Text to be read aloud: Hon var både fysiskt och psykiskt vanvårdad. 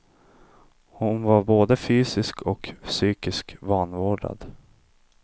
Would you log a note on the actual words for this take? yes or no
no